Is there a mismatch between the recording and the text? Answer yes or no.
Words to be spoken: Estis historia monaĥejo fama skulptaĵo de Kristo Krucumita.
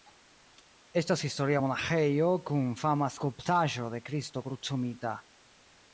yes